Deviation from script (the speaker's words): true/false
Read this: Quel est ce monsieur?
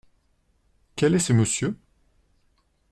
false